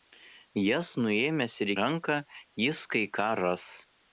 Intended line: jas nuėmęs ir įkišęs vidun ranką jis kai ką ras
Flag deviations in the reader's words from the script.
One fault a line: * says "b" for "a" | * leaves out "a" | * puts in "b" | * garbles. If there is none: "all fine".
* leaves out "įkišęs vidun"